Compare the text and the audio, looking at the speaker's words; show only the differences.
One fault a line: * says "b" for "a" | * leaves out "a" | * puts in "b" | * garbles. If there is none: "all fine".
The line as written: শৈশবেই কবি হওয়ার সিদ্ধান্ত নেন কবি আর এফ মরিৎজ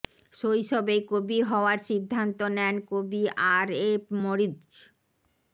all fine